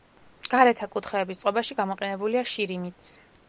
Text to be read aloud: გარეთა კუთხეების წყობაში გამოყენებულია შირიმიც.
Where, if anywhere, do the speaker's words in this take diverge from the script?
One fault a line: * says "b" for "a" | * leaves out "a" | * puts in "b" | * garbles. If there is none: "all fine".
all fine